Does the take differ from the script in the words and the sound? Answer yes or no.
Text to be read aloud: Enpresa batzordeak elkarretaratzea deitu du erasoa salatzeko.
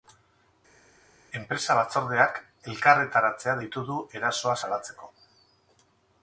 no